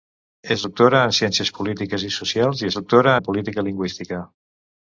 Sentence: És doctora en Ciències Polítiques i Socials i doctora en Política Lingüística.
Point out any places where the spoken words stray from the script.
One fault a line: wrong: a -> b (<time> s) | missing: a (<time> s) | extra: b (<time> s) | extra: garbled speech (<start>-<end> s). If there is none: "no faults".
no faults